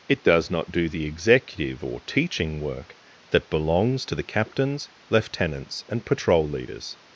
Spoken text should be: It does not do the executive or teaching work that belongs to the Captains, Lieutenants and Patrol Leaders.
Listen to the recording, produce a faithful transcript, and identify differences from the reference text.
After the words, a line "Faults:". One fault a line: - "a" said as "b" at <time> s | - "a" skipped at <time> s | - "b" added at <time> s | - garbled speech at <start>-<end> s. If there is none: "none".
It does not do the executive or teaching work that belongs to the Captains, Lieutenants and Patrol Leaders.
Faults:
none